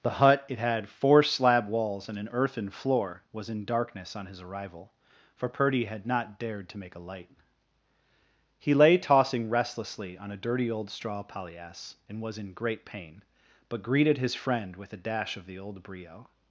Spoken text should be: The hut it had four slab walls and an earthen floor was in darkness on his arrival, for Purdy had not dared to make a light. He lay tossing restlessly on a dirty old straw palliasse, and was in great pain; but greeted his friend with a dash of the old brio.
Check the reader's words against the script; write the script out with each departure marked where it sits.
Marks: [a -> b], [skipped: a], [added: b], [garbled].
The hut it had four slab walls and an earthen floor was in darkness on his arrival, for Purdy had not dared to make a light. He lay tossing restlessly on a dirty old straw palliasse, and was in great pain; but greeted his friend with a dash of the old brio.